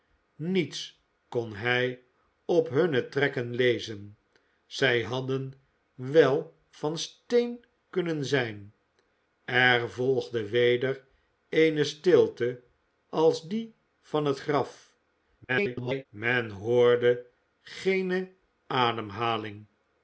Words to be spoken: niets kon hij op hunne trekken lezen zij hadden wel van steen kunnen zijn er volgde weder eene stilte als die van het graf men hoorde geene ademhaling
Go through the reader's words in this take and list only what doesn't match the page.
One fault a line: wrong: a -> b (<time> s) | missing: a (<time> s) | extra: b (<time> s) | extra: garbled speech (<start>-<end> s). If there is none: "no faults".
extra: garbled speech (15.5-16.1 s)